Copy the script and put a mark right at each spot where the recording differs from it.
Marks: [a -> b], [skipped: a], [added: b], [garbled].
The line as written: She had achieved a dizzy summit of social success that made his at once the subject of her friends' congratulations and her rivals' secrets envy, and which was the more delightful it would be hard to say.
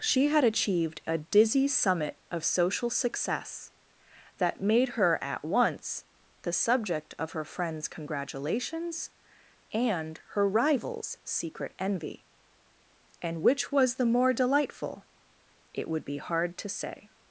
She had achieved a dizzy summit of social success that made [his -> her] at once the subject of her friends' congratulations and her rivals' [secrets -> secret] envy, and which was the more delightful it would be hard to say.